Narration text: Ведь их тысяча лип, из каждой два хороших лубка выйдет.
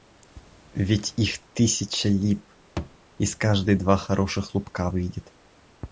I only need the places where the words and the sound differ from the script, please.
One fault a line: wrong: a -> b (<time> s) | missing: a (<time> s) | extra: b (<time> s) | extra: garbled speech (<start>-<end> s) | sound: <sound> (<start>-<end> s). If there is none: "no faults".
sound: thud (2.8-3.0 s)